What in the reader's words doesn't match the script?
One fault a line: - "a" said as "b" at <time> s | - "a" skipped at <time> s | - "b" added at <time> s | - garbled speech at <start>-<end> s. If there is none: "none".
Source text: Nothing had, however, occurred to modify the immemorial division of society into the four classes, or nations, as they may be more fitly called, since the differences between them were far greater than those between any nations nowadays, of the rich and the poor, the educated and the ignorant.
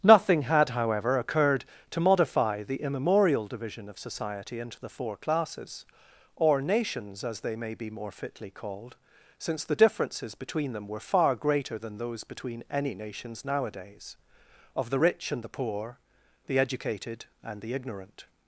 none